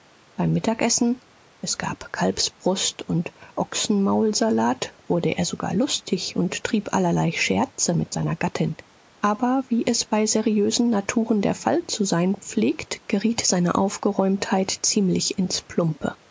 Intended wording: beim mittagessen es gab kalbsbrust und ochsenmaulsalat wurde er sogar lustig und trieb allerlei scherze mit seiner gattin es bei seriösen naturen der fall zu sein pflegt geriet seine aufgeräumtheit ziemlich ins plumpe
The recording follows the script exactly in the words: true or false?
false